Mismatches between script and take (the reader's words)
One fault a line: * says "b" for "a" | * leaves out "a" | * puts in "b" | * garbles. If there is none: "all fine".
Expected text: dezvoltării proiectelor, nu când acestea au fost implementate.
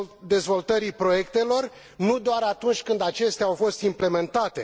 * puts in "doar atunci"